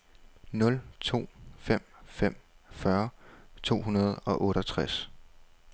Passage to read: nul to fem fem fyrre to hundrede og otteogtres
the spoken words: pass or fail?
pass